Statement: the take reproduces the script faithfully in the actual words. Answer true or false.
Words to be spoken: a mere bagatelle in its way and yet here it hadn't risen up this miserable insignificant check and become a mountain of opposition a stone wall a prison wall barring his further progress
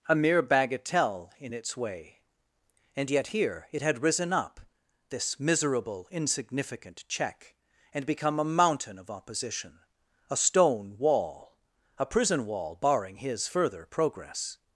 false